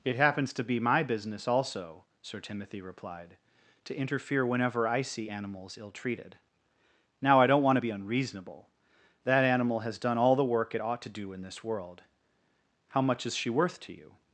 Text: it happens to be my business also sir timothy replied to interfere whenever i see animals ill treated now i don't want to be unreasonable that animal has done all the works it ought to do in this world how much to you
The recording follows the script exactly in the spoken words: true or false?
false